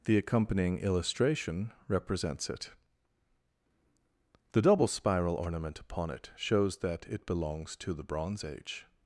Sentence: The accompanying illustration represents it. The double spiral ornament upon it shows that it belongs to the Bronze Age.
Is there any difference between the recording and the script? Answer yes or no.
no